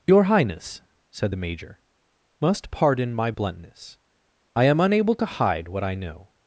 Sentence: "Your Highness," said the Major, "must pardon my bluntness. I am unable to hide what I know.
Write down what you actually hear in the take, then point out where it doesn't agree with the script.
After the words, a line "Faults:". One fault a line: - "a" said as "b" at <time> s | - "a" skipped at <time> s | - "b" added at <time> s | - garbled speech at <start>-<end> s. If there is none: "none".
"Your Highness," said the Major, "must pardon my bluntness. I am unable to hide what I know.
Faults:
none